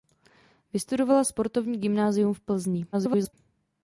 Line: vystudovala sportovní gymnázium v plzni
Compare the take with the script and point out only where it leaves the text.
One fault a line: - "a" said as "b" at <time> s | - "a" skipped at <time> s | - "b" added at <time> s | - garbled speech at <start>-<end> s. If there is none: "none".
- garbled speech at 2.9-3.3 s